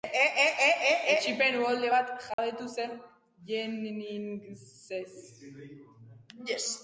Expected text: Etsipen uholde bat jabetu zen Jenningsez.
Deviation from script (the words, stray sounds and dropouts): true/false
true